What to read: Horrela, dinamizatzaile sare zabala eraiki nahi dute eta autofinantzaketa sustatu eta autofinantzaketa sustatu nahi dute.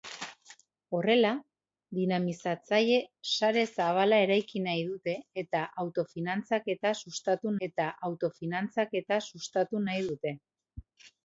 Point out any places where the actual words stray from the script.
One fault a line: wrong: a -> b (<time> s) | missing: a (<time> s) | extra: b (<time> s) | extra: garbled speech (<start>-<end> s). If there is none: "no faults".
no faults